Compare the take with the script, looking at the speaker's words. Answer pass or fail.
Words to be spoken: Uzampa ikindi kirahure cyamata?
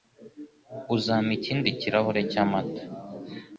pass